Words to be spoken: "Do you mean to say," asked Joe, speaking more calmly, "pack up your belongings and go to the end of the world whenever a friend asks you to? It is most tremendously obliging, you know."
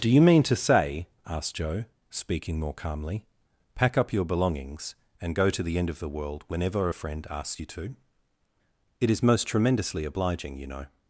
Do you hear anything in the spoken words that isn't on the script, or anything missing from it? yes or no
no